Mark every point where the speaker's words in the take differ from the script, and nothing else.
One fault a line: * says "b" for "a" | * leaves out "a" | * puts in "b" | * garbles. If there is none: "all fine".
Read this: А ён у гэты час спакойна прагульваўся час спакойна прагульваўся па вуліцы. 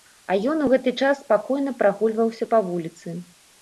* leaves out "час спакойна прагульваўся"